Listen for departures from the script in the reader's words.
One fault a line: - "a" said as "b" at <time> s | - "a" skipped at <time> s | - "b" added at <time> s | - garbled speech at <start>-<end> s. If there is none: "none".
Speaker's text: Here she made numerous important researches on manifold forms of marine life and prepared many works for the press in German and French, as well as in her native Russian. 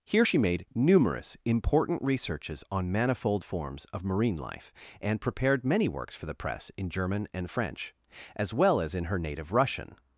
none